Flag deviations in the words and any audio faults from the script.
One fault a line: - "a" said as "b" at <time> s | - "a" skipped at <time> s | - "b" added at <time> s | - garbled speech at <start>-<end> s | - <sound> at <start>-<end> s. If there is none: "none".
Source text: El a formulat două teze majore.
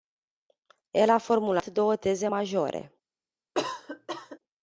- cough at 3.5-4.4 s